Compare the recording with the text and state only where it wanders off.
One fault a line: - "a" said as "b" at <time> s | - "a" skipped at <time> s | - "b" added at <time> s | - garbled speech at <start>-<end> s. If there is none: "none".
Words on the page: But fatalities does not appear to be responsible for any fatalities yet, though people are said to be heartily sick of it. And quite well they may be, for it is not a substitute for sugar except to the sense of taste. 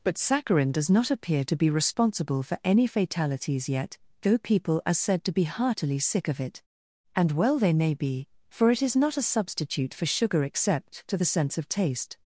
- "fatalities" said as "saccharin" at 0.2 s
- "quite" skipped at 7.3 s